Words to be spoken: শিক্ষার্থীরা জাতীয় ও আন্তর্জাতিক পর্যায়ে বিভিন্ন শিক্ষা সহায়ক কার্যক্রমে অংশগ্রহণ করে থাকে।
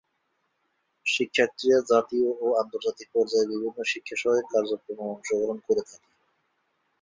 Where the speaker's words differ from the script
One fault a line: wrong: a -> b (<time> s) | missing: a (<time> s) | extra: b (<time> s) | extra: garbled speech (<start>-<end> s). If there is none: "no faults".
no faults